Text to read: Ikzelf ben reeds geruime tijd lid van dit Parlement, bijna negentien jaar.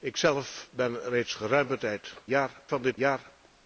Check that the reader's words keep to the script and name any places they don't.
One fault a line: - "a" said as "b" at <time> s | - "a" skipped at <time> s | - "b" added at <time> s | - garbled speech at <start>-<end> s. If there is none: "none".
- "lid" said as "jaar" at 2.3 s
- "Parlement bijna negentien" skipped at 3.0 s